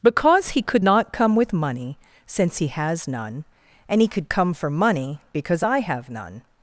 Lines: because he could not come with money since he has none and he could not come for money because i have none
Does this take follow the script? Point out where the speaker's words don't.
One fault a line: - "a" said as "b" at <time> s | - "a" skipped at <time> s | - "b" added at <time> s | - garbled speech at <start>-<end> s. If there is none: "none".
- "not" skipped at 4.3 s